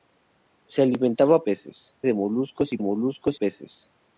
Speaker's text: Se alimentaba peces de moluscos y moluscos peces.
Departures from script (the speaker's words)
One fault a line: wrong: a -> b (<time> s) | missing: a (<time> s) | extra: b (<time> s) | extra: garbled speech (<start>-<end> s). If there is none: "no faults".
no faults